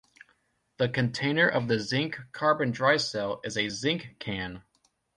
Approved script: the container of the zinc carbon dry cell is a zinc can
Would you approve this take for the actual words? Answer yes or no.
yes